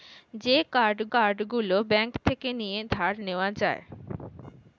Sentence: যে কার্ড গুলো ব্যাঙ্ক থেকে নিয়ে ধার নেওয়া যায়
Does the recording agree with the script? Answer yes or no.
no